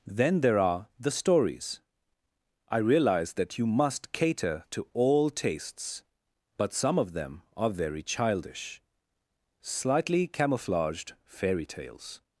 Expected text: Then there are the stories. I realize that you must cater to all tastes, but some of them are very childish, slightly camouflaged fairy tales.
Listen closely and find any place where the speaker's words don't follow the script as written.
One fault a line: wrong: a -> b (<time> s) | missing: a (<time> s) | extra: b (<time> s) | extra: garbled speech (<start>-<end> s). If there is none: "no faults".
no faults